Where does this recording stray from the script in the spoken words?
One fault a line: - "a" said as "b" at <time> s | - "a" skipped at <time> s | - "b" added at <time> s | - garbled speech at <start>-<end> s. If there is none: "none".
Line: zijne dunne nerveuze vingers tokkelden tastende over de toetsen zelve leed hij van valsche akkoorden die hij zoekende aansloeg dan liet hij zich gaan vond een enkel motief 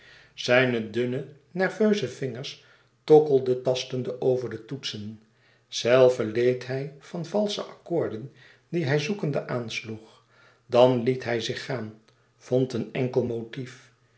none